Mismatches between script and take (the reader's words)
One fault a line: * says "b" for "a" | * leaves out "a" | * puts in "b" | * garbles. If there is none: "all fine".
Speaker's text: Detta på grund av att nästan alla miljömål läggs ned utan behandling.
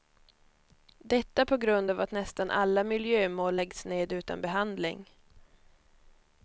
all fine